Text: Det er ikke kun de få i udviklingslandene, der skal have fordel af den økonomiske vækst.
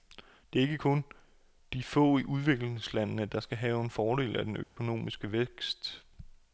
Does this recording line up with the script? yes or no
yes